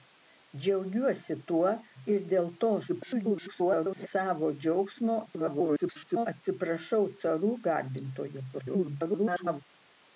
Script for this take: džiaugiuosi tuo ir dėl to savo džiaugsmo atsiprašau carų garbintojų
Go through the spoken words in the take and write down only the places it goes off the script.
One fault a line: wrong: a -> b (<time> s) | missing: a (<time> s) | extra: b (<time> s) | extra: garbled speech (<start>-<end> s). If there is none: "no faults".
extra: garbled speech (2.9-4.1 s)
extra: garbled speech (5.3-6.3 s)
extra: garbled speech (8.5-9.6 s)